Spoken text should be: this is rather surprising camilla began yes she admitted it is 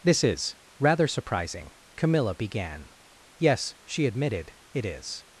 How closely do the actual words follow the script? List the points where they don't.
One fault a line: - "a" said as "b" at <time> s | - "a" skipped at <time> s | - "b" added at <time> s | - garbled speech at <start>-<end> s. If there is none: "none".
none